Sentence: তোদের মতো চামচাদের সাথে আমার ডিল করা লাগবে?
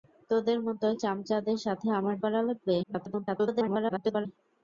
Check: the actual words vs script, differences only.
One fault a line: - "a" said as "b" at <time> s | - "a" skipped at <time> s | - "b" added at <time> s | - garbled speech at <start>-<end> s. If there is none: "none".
- "ডিল" skipped at 2.1 s
- garbled speech at 2.8-4.3 s